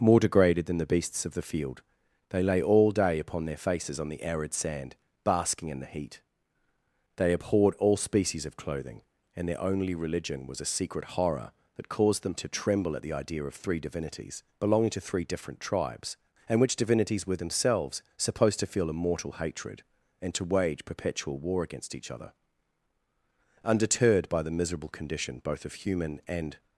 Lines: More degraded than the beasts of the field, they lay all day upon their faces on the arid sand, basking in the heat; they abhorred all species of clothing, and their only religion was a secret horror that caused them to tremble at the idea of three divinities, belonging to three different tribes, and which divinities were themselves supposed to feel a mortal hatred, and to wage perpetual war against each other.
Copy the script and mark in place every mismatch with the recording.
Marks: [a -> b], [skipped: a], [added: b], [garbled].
More degraded than the beasts of the field, they lay all day upon their faces on the arid sand, basking in the heat; they abhorred all species of clothing, and their only religion was a secret horror that caused them to tremble at the idea of three divinities, belonging to three different tribes, and which divinities were themselves supposed to feel a mortal hatred, and to wage perpetual war against each other. [added: Undeterred by the miserable condition both of human and]